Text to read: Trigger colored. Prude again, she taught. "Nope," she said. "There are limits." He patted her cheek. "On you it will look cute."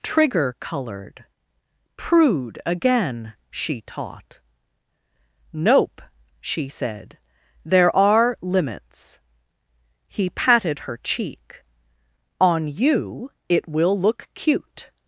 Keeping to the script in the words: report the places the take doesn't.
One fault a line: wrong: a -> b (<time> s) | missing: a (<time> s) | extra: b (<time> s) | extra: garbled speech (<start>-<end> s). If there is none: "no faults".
no faults